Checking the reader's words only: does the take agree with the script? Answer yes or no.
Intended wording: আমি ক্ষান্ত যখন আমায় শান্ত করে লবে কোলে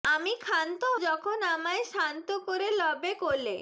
yes